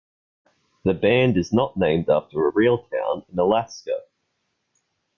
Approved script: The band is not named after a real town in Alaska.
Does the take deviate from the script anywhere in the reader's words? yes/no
no